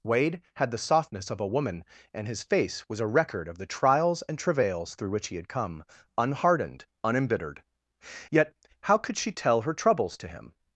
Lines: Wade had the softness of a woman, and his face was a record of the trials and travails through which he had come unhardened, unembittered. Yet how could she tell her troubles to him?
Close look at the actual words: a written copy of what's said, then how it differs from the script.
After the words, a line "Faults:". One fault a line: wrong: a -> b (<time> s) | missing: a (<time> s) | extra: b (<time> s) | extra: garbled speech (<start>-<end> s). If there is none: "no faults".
Wade had the softness of a woman, and his face was a record of the trials and travails through which he had come unhardened, unembittered. Yet how could she tell her troubles to him?
Faults:
no faults